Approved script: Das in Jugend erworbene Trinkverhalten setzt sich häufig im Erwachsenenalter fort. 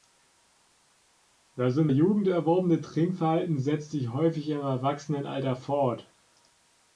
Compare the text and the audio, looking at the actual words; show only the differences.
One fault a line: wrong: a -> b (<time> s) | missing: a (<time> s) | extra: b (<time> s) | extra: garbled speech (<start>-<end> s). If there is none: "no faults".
no faults